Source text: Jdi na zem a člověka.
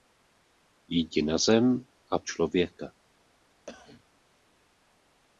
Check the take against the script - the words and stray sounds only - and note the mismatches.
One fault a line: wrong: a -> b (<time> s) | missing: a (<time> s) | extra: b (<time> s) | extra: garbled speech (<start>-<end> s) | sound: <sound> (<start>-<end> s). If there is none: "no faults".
sound: cough (3.7-4.0 s)